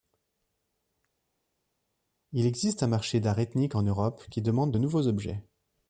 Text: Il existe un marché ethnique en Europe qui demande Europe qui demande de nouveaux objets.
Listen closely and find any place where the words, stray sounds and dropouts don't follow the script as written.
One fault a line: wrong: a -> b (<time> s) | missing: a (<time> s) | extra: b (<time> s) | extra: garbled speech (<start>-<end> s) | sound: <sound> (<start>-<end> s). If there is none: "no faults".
extra: d'art (3.2 s)
missing: Europe qui demande (4.7 s)